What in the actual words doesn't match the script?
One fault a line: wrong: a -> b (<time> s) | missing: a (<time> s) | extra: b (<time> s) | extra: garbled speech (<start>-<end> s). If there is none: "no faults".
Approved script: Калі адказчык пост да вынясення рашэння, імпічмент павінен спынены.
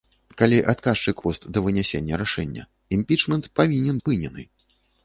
no faults